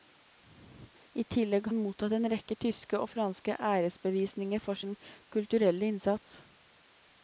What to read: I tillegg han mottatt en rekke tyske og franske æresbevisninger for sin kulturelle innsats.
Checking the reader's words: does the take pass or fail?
pass